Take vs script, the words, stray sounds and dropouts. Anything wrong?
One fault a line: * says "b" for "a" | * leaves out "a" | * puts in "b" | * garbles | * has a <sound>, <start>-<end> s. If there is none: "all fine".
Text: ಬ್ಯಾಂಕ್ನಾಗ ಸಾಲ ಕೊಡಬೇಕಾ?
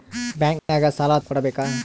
* has a dropout, 0.6-0.7 s